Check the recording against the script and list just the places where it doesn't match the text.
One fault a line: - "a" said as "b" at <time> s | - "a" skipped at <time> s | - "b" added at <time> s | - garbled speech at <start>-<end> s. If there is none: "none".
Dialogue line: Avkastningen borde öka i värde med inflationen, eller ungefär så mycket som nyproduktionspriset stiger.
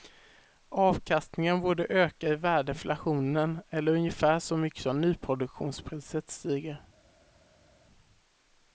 - "med" skipped at 2.7 s